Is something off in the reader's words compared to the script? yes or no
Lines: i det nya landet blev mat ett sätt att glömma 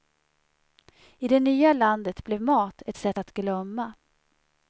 no